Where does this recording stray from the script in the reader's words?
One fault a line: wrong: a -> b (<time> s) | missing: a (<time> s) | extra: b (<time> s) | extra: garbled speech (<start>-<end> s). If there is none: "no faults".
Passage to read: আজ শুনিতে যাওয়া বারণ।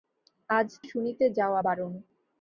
no faults